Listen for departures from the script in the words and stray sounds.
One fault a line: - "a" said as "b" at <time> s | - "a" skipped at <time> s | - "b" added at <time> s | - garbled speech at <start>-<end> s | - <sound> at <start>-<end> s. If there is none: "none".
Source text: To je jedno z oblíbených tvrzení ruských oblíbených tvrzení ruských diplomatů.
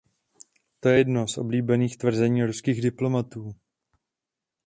- "oblíbených tvrzení ruských" skipped at 2.8 s